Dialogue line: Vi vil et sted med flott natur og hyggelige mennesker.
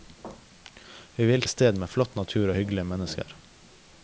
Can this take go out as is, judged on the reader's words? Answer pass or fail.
pass